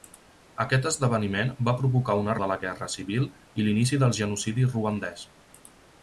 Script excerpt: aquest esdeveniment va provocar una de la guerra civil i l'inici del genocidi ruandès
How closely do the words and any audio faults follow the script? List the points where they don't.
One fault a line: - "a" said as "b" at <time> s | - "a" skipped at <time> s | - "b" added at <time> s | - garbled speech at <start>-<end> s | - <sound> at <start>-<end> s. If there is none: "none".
none